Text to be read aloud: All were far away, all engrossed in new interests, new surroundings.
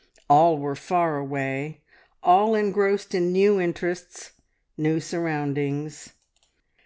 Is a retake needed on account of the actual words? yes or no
no